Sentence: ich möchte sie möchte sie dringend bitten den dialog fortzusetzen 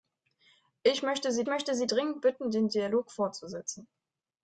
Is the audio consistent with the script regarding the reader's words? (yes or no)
yes